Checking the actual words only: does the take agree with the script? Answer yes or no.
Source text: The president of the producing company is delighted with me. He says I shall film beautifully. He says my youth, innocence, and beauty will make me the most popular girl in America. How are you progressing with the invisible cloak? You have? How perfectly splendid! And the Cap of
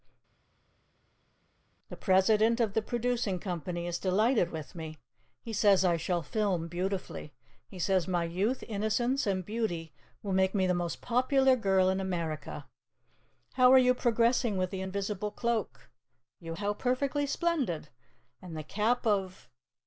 no